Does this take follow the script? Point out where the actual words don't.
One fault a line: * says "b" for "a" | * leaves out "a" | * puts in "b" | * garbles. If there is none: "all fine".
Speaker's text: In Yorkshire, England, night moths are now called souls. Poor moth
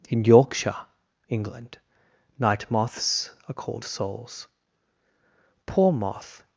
* leaves out "now"